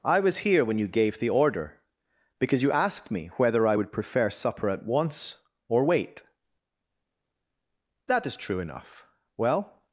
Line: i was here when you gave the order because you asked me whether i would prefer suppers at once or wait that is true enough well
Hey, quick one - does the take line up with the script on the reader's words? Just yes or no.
no